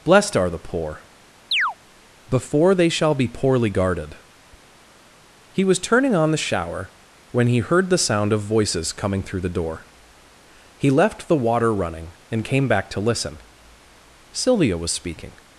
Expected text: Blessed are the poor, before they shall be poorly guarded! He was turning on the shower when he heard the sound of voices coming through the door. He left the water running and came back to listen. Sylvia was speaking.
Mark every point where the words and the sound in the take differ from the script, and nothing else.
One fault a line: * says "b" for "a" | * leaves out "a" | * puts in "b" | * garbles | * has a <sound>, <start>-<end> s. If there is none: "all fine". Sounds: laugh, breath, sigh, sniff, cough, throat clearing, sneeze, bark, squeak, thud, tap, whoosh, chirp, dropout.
* has a chirp, 1.5-1.7 s